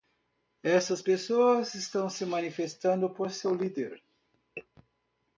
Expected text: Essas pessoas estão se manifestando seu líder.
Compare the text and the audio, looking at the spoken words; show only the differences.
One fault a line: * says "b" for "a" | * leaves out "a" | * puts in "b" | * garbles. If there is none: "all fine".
* puts in "por"